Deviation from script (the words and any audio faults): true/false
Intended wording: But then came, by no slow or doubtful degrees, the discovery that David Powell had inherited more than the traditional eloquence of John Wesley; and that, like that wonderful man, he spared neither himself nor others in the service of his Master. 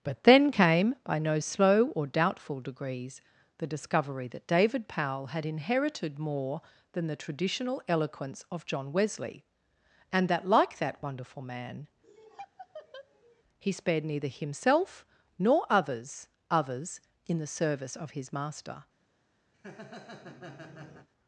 true